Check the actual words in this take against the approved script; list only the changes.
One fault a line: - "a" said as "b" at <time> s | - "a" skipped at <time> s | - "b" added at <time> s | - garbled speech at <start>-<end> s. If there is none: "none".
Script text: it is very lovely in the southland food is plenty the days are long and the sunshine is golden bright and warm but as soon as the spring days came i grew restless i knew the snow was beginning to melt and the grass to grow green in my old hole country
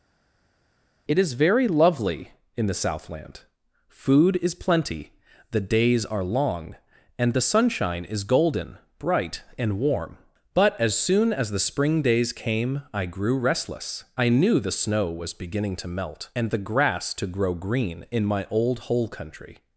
none